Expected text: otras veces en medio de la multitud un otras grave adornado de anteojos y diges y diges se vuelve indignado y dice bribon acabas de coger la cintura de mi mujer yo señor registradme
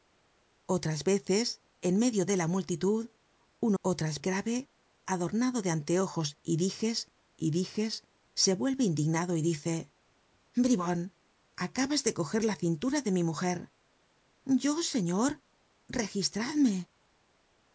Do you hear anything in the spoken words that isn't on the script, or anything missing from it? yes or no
no